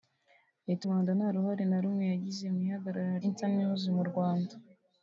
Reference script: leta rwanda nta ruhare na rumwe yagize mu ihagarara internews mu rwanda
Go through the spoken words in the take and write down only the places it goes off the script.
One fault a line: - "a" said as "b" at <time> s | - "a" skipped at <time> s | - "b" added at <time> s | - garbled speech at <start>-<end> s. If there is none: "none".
none